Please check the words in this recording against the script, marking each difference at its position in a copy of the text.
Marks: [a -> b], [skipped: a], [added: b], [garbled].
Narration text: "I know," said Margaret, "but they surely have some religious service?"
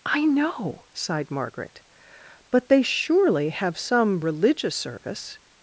"I know," [said -> sighed] Margaret, "but they surely have some religious service?"